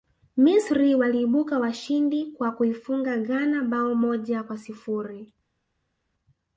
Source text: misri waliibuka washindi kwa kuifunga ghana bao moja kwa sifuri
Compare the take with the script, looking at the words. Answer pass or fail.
pass